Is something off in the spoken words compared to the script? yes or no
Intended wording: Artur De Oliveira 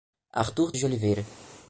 no